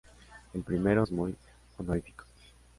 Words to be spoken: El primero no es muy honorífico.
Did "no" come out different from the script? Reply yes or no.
yes